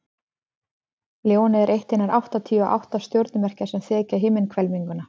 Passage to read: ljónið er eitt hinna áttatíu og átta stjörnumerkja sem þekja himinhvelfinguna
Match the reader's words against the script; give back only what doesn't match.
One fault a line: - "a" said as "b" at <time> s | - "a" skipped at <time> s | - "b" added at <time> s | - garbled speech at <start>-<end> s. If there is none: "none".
none